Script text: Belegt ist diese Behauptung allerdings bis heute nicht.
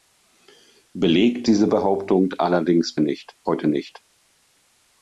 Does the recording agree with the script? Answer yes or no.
no